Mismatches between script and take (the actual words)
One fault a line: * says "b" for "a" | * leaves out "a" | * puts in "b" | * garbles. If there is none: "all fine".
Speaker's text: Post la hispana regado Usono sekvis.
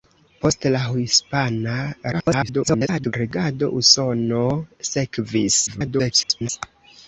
* garbles
* garbles